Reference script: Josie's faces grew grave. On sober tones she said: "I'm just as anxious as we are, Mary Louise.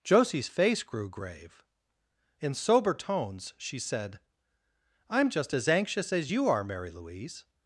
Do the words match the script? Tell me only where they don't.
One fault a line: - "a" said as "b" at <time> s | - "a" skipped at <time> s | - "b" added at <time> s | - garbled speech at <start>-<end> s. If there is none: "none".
- "faces" said as "face" at 0.5 s
- "On" said as "In" at 2.4 s
- "we" said as "you" at 6.3 s